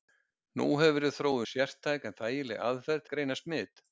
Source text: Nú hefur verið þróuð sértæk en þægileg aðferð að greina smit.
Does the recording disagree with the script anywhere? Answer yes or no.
no